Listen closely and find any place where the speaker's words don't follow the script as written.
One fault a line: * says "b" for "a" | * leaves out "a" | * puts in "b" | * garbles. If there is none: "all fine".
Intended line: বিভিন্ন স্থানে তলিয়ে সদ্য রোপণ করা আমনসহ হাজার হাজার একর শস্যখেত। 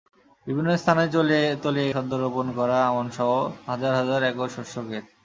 all fine